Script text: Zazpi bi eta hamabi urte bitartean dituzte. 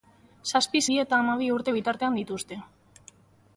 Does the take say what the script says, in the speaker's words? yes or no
yes